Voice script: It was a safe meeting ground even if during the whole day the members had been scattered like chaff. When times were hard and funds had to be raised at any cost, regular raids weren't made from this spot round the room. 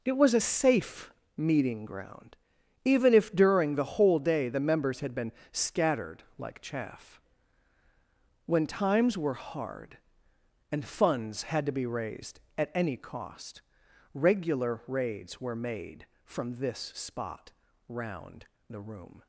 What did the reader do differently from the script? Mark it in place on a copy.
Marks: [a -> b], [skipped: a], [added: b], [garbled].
It was a safe meeting ground even if during the whole day the members had been scattered like chaff. When times were hard and funds had to be raised at any cost, regular raids [weren't -> were] made from this spot round the room.